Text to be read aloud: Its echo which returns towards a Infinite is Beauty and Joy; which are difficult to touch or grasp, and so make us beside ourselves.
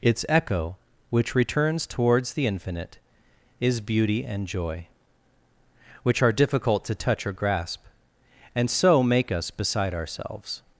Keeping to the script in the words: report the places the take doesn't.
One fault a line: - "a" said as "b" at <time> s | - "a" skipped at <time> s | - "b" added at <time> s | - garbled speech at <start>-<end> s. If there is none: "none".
- "a" said as "the" at 2.3 s